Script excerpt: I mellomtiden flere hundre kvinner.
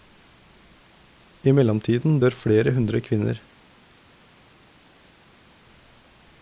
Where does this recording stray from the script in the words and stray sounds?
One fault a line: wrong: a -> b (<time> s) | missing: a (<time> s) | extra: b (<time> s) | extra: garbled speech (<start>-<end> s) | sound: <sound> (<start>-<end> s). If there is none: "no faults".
extra: dør (2.2 s)